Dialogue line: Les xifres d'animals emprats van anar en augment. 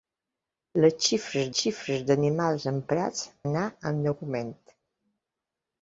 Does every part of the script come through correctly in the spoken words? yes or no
no